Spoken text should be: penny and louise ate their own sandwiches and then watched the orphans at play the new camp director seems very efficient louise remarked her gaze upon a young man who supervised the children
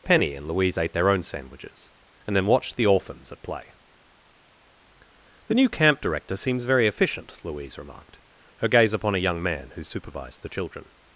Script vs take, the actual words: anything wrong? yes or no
no